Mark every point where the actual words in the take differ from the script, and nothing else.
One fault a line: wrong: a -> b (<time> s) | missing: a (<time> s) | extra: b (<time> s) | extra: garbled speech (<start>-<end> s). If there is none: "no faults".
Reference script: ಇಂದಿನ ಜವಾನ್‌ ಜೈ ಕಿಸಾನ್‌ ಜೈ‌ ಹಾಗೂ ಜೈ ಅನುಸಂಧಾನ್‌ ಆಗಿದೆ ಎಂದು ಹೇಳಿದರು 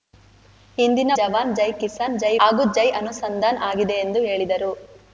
no faults